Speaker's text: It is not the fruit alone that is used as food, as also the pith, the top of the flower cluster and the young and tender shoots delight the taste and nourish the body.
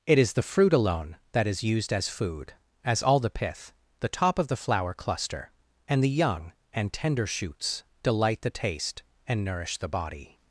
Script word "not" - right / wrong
wrong